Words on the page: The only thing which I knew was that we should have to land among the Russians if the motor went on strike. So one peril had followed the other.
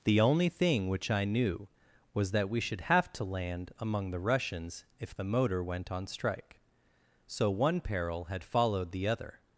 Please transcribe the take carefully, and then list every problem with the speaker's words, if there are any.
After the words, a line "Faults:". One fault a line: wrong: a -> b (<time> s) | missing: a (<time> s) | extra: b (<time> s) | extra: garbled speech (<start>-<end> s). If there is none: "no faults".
The only thing which I knew was that we should have to land among the Russians if the motor went on strike. So one peril had followed the other.
Faults:
no faults